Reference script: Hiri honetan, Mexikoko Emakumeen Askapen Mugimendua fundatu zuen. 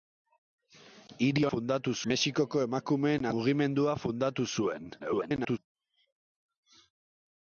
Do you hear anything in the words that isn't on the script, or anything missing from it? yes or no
yes